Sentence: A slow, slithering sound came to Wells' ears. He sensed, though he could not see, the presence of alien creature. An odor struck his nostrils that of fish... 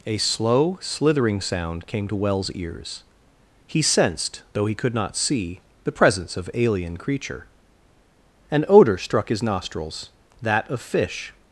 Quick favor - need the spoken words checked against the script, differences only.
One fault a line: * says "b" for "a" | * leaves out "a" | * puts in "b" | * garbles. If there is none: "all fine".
all fine